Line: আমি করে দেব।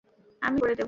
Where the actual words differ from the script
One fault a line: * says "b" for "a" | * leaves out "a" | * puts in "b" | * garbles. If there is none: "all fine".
all fine